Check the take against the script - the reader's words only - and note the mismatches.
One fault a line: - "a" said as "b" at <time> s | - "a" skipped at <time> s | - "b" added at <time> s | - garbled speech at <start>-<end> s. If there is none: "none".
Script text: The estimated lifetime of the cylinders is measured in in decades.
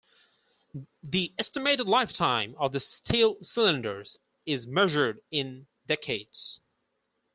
- "steel" added at 2.8 s
- "in" skipped at 5.7 s